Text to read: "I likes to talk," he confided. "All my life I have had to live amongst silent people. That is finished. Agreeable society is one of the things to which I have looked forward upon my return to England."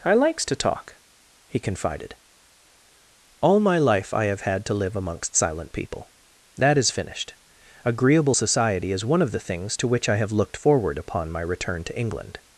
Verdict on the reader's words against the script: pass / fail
pass